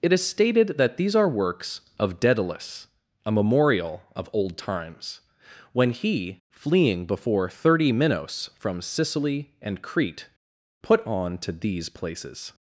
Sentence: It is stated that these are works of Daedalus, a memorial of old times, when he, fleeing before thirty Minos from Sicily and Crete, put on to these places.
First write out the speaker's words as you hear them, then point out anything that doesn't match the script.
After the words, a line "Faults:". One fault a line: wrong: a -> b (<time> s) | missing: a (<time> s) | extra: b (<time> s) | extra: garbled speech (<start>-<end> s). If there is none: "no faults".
It is stated that these are works of Daedalus, a memorial of old times, when he, fleeing before thirty Minos from Sicily and Crete, put on to these places.
Faults:
no faults